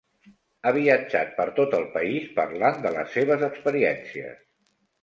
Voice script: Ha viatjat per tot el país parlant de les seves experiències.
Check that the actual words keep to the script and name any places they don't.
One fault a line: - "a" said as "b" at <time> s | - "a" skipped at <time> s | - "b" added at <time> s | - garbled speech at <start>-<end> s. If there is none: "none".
none